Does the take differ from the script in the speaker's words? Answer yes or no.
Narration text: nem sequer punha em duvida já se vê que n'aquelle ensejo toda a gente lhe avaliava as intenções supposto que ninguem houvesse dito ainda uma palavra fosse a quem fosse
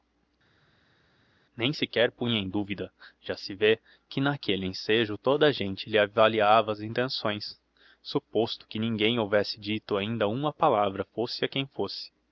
no